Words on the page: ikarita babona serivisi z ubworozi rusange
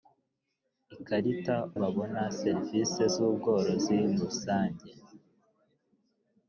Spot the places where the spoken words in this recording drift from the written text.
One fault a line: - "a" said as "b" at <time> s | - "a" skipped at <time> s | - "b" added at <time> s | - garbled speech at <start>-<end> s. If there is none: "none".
none